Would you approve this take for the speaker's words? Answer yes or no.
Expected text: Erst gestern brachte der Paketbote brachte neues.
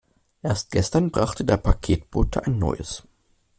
no